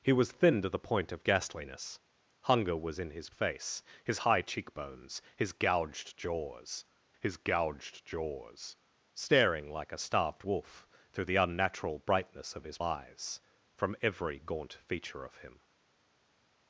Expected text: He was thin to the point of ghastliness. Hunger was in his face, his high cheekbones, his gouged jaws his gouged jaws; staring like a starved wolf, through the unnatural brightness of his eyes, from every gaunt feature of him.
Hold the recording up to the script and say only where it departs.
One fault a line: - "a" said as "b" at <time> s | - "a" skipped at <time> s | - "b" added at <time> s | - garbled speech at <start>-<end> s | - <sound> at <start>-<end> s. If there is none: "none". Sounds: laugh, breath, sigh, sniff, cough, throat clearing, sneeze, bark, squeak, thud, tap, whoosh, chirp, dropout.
none